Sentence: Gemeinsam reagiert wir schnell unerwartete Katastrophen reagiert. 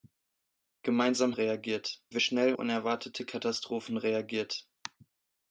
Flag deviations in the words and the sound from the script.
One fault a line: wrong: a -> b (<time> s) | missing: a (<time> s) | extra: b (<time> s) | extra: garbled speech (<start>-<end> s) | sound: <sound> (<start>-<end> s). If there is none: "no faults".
no faults